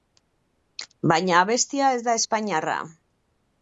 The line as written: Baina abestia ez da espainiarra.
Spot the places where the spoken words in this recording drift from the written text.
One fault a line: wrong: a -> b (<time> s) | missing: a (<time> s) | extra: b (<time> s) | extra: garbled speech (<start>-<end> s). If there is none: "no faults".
no faults